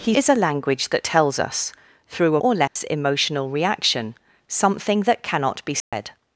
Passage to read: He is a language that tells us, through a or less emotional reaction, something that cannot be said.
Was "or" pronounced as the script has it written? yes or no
yes